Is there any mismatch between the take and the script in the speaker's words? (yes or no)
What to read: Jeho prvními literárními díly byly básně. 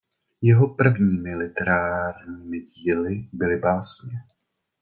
no